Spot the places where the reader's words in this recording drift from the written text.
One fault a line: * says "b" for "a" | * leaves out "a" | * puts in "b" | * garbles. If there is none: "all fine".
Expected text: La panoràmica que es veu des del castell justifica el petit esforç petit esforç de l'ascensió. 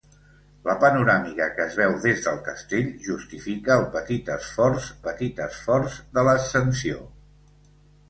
all fine